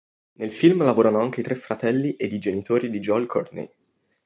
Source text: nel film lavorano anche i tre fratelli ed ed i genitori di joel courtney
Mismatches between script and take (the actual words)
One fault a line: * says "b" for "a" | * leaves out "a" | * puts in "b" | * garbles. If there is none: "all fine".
* leaves out "ed"